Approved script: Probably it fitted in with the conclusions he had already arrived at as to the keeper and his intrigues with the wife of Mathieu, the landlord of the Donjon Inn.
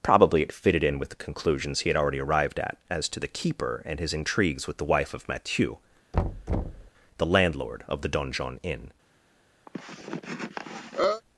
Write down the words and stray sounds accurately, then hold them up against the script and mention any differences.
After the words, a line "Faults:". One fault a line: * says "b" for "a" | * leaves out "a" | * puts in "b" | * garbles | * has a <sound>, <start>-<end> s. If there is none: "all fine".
Probably it fitted in with the conclusions he had already arrived at as to the keeper and his intrigues with the wife of Mathieu, the landlord of the Donjon Inn.
Faults:
* has a thud, 6.1-6.9 s
* has a cough, 9.7-11.2 s